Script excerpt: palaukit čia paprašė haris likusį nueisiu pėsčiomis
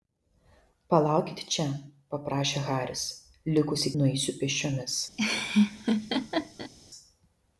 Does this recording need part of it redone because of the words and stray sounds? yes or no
yes